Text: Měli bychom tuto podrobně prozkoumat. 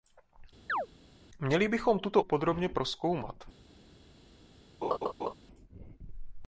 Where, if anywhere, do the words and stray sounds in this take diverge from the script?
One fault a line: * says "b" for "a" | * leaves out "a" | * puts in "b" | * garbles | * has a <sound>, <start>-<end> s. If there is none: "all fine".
* has a chirp, 0.7-0.9 s
* has a laugh, 4.8-5.3 s